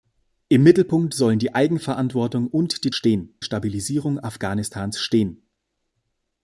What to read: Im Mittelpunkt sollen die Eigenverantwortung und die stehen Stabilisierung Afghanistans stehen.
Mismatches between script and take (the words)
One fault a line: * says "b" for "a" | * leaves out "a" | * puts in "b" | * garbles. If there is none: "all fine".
all fine